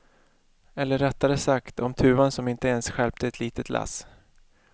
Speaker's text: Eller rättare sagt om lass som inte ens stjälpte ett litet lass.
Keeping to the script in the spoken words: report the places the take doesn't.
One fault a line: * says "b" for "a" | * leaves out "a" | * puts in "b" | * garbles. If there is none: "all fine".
* says "tuvan" for "lass"